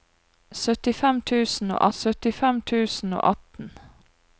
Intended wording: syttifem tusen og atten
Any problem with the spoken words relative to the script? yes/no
yes